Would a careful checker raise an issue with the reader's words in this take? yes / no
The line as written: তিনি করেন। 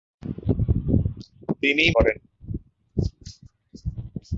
no